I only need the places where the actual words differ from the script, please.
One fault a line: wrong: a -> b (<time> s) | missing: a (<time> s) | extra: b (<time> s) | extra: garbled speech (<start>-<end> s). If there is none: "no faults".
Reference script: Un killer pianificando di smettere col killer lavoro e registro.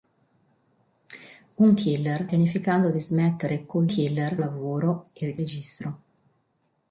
no faults